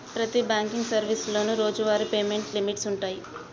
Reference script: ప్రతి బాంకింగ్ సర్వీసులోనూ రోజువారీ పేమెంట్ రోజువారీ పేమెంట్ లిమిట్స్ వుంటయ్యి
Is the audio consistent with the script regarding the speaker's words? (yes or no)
no